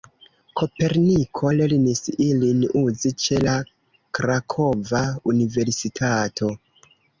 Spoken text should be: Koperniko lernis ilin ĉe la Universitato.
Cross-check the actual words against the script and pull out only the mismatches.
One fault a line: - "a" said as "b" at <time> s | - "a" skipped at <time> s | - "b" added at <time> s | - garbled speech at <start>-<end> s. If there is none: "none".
- "uzi" added at 2.8 s
- "Krakova" added at 4.2 s